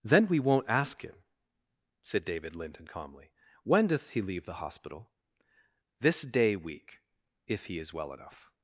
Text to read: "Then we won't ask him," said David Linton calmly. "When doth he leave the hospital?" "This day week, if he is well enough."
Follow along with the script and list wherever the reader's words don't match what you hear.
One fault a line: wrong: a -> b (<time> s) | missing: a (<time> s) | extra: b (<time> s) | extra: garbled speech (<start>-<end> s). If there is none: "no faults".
no faults